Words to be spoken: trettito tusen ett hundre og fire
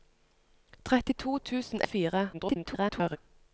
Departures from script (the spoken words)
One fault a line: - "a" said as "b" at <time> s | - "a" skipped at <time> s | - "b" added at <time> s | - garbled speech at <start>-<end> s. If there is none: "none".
- "ett hundre" skipped at 1.8 s
- garbled speech at 2.3-3.2 s